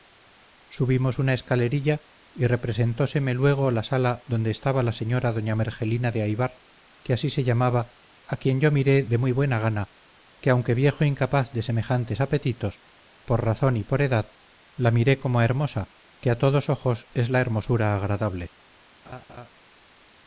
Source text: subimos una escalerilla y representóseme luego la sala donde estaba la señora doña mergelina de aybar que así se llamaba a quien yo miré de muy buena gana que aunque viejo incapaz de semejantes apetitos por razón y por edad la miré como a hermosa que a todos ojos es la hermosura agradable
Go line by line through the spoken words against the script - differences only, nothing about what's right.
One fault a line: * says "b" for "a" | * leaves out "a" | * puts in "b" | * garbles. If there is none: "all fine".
all fine